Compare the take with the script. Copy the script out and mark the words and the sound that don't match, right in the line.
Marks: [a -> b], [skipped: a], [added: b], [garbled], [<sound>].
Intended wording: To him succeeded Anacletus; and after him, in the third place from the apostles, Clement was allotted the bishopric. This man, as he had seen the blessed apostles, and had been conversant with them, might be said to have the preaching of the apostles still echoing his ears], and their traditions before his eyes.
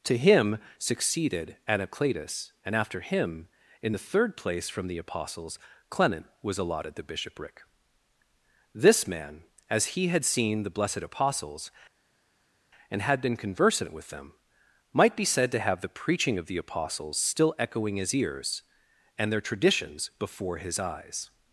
To him succeeded Anacletus; and after him, in the third place from the apostles, Clement was allotted the bishopric. This man, as he had seen the blessed apostles, and had been conversant with them, might be said to have the preaching of the apostles still echoing his ears], and their traditions before his eyes.